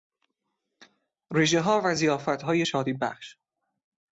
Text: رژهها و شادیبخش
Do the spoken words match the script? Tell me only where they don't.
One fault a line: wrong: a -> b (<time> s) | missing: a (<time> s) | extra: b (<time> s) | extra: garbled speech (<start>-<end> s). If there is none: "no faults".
extra: ضیافتهای (1.9 s)